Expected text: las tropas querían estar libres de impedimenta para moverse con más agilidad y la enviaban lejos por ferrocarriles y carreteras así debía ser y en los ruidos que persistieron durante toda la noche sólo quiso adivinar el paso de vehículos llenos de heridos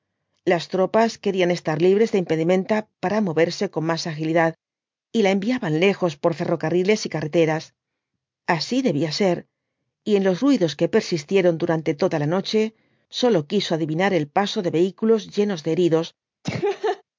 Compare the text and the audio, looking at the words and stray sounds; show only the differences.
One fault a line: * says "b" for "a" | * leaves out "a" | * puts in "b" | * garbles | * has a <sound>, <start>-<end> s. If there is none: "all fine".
* has a laugh, 16.4-17.0 s